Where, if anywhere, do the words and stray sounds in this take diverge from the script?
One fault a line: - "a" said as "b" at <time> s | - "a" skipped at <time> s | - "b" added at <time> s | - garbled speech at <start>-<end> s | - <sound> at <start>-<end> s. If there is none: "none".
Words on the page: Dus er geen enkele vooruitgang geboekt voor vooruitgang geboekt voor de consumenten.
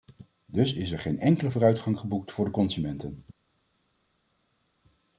- "is" added at 0.7 s
- "vooruitgang geboekt voor" skipped at 2.4 s